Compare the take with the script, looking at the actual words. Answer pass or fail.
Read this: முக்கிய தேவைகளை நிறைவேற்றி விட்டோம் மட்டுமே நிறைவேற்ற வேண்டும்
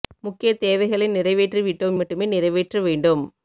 pass